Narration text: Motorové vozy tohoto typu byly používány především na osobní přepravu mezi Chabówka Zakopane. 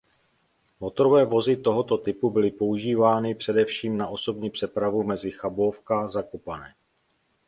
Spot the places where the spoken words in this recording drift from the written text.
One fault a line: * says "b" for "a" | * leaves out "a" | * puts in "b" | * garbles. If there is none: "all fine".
all fine